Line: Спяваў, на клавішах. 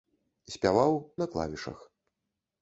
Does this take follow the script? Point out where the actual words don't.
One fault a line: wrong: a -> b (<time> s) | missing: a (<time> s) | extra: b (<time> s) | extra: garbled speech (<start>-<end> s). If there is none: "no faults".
no faults